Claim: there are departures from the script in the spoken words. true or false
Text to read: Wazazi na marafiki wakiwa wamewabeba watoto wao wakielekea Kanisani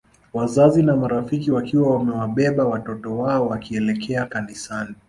false